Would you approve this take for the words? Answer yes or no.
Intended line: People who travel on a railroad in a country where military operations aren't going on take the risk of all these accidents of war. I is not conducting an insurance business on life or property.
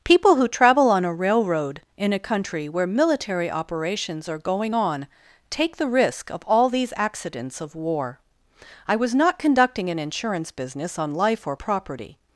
no